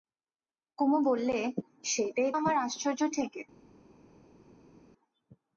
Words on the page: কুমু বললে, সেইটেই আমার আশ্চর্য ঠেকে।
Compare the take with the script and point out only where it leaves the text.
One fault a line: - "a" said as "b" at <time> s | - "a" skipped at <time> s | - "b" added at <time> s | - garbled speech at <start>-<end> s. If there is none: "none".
none